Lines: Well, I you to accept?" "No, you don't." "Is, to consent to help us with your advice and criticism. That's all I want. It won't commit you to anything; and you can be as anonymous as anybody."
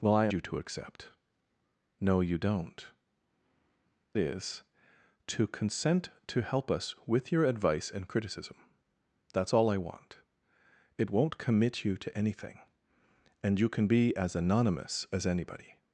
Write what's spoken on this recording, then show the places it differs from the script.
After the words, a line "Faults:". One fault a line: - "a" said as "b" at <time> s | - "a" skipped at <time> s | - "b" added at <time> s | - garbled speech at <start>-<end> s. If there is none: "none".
Well, I you to accept?" "No, you don't." "Is, to consent to help us with your advice and criticism. That's all I want. It won't commit you to anything; and you can be as anonymous as anybody."
Faults:
none